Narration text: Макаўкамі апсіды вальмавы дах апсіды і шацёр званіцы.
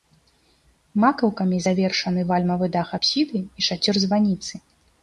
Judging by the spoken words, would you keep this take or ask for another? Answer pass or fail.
fail